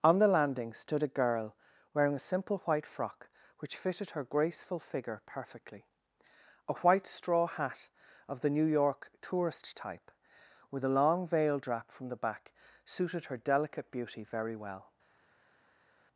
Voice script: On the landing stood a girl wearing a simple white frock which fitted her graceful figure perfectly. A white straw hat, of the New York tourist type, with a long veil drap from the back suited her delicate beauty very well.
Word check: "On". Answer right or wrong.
right